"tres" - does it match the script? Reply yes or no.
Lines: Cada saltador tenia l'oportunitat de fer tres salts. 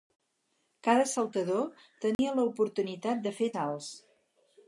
no